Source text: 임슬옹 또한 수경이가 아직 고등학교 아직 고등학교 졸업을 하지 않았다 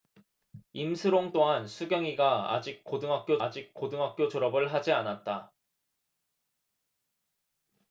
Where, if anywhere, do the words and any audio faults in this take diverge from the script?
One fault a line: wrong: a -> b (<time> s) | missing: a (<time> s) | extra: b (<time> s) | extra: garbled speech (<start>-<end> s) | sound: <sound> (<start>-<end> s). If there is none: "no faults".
no faults